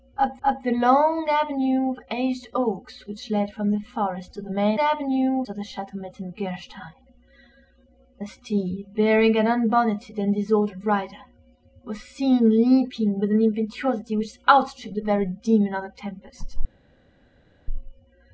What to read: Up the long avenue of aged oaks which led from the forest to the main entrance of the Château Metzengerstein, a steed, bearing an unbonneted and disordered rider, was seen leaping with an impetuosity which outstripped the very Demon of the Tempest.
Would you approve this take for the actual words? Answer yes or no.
no